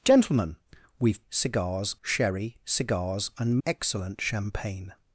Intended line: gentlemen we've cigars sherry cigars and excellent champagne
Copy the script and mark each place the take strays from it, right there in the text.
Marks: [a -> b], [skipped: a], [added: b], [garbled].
gentlemen we've cigars sherry cigars and excellent champagne